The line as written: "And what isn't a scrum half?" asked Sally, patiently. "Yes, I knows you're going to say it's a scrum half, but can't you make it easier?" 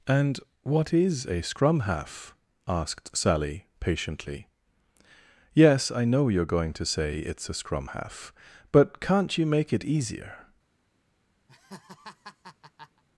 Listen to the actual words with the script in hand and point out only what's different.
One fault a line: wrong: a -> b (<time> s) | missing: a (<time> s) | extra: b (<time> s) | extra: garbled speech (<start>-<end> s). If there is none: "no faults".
wrong: isn't -> is (0.9 s)
wrong: knows -> know (6.0 s)